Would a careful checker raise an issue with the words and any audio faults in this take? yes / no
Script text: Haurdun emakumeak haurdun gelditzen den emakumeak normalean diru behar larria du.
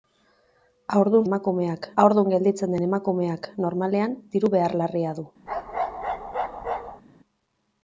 yes